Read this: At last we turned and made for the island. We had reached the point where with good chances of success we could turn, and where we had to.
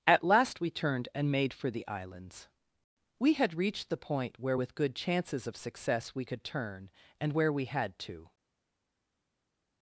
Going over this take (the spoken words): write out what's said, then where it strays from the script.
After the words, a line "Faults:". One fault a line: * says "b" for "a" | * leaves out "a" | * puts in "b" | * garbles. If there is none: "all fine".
At last we turned and made for the islands. We had reached the point where with good chances of success we could turn, and where we had to.
Faults:
* says "islands" for "island"